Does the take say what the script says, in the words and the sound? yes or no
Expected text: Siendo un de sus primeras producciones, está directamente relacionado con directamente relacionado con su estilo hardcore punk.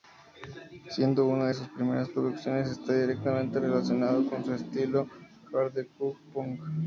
no